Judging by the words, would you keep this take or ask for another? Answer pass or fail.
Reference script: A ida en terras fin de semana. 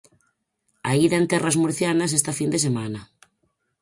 fail